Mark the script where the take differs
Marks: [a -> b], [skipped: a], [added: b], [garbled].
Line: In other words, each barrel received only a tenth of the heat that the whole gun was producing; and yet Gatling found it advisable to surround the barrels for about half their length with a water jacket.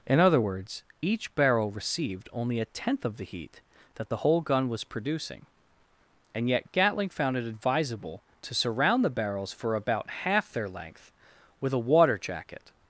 In other words, each barrel received only a tenth of the heat that the whole gun was producing; and yet Gatling found it advisable to surround the barrels for about half their length with a water jacket.